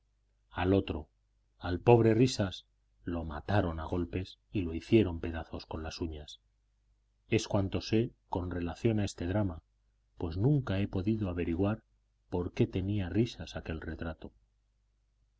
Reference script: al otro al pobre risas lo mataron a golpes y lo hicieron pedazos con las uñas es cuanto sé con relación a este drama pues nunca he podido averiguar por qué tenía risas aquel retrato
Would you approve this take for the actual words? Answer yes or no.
yes